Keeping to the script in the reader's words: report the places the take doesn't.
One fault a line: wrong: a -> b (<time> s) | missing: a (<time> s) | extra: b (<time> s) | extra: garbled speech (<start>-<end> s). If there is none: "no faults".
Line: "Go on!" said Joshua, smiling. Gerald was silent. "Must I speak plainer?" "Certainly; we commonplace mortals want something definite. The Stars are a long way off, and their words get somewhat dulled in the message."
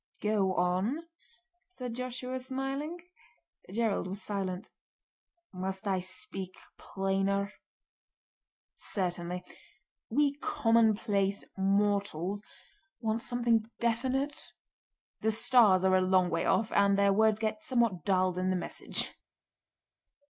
no faults